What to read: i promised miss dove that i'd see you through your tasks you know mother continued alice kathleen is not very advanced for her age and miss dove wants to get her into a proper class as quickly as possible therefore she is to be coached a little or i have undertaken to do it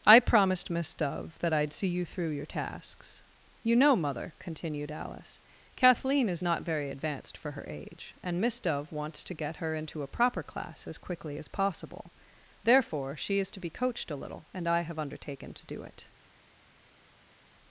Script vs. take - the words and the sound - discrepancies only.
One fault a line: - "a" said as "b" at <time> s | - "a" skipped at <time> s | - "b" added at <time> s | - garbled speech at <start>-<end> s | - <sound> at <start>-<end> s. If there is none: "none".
- "or" said as "and" at 14.5 s